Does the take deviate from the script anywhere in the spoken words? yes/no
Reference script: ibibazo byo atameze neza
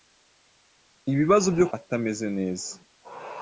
no